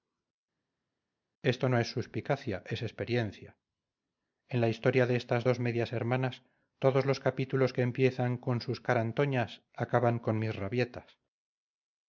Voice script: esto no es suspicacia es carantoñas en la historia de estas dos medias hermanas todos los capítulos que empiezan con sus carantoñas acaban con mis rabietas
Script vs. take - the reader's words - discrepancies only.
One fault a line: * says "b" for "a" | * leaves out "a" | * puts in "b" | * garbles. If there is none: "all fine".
* says "experiencia" for "carantoñas"